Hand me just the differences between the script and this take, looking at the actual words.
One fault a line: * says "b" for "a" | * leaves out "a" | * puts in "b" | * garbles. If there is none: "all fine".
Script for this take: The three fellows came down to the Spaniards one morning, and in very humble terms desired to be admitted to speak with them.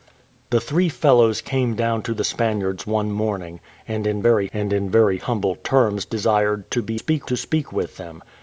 * puts in "and in very"
* says "speak" for "admitted"